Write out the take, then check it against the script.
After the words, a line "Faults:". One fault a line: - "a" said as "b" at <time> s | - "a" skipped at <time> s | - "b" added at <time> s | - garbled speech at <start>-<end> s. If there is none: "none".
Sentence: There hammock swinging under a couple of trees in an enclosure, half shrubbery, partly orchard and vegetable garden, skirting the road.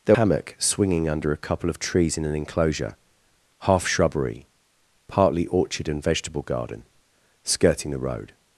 There hammock swinging under a couple of trees in an enclosure, half shrubbery, partly orchard and vegetable garden, skirting the road.
Faults:
none